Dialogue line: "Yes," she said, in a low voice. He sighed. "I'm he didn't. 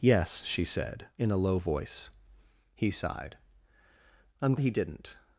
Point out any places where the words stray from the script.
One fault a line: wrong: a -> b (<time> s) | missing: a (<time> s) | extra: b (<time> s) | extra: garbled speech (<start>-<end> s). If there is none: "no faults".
no faults